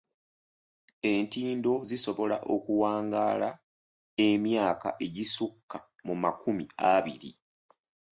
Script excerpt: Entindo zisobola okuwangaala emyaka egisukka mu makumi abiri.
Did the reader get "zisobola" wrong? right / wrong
right